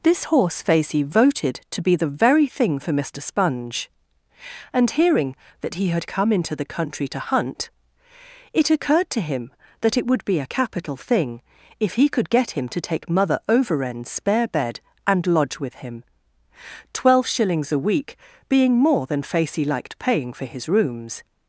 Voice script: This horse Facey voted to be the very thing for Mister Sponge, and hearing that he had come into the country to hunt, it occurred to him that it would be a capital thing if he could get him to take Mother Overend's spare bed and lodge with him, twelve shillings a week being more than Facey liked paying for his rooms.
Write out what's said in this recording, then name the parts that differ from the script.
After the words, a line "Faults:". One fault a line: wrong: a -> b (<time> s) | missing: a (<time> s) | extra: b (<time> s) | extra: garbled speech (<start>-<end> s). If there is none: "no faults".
This horse Facey voted to be the very thing for Mister Sponge, and hearing that he had come into the country to hunt, it occurred to him that it would be a capital thing if he could get him to take Mother Overend's spare bed and lodge with him, twelve shillings a week being more than Facey liked paying for his rooms.
Faults:
no faults